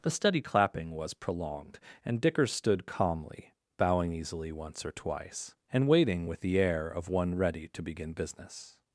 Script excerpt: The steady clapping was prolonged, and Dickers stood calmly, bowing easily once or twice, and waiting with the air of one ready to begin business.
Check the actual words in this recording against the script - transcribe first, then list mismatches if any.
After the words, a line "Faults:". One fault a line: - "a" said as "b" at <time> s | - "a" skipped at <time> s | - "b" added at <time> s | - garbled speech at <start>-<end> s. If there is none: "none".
The steady clapping was prolonged, and Dickers stood calmly, bowing easily once or twice, and waiting with the air of one ready to begin business.
Faults:
none